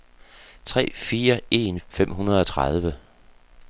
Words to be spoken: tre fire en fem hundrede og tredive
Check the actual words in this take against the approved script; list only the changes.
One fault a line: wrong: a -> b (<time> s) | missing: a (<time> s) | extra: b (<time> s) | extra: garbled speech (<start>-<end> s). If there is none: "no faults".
no faults